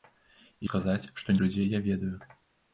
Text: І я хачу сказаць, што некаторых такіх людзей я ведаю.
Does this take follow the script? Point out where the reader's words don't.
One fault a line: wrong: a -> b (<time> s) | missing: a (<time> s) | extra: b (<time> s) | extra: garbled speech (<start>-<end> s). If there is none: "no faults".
missing: я хачу (0.7 s)
missing: некаторых такіх (1.4 s)